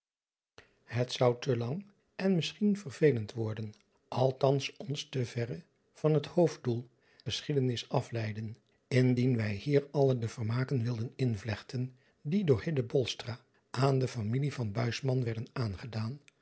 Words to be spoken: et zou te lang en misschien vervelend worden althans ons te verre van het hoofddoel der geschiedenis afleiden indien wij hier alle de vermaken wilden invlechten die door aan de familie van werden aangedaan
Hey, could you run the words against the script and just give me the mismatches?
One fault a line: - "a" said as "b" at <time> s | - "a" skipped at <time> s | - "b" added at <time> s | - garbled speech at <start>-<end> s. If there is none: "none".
- "der" skipped at 6.9 s